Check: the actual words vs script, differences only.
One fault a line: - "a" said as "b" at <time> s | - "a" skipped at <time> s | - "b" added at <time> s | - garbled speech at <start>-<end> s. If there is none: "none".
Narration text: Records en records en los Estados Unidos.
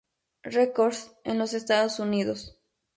- "records en" skipped at 1.4 s